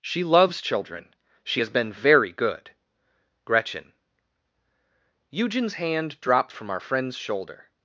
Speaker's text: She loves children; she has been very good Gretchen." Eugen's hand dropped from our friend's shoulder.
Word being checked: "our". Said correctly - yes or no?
yes